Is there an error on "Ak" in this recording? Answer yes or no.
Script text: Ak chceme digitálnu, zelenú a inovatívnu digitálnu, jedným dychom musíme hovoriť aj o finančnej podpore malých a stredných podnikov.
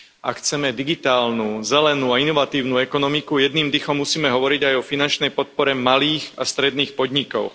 no